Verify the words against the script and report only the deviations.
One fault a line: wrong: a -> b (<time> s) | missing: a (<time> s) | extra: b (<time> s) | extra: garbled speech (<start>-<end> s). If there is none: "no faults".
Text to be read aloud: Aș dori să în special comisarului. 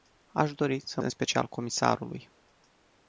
no faults